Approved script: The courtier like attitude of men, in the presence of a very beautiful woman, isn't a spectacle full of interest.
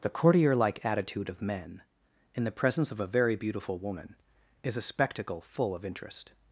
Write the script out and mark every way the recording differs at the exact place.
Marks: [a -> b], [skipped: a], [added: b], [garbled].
The courtier like attitude of men, in the presence of a very beautiful woman, [isn't -> is] a spectacle full of interest.